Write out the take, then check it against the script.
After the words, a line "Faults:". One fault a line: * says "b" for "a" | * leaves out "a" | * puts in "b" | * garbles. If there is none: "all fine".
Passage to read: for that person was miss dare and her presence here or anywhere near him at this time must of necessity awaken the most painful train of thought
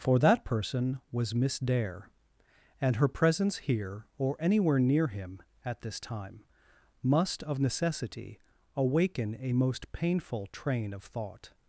for that person was miss dare and her presence here or anywhere near him at this time must of necessity awaken a most painful train of thought
Faults:
* says "a" for "the"